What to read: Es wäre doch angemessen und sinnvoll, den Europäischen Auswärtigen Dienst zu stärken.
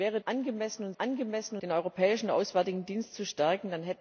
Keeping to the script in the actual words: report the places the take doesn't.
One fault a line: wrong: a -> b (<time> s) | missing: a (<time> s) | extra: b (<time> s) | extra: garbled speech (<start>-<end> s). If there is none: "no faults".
missing: doch (0.2 s)
wrong: sinnvoll -> angemessen (1.0 s)